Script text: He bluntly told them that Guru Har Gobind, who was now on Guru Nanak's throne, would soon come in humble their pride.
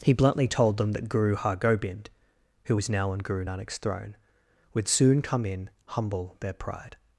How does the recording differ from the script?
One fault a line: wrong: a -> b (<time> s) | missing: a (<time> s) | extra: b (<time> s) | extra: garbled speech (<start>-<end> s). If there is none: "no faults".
no faults